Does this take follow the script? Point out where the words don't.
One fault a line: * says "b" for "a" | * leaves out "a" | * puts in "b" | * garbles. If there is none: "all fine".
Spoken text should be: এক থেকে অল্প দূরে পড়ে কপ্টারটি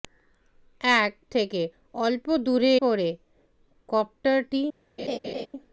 all fine